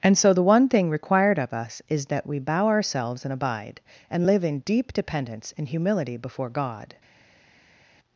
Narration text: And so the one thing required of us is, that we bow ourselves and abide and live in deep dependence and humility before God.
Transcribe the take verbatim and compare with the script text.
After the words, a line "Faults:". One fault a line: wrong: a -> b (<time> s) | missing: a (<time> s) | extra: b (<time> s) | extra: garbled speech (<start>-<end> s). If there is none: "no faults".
And so the one thing required of us is, that we bow ourselves and abide and live in deep dependence and humility before God.
Faults:
no faults